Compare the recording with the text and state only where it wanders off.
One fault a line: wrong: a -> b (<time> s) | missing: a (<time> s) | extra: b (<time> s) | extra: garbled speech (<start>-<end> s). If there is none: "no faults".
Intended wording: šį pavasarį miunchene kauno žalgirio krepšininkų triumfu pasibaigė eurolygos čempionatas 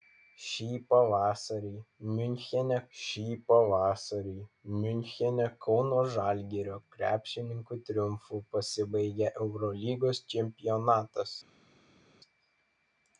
extra: šį pavasarį miunchene (3.0 s)